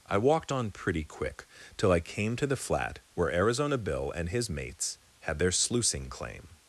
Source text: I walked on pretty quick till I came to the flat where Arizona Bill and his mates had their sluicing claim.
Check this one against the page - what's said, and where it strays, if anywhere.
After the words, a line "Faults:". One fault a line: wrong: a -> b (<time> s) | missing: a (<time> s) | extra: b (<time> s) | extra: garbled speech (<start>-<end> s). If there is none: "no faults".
I walked on pretty quick till I came to the flat where Arizona Bill and his mates had their sluicing claim.
Faults:
no faults